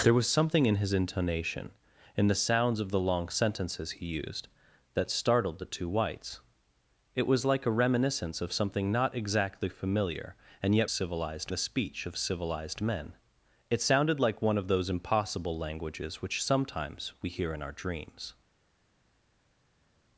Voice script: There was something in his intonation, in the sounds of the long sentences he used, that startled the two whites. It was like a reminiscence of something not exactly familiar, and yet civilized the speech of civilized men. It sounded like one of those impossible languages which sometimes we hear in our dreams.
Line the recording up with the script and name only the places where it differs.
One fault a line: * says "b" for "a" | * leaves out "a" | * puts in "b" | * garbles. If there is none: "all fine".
all fine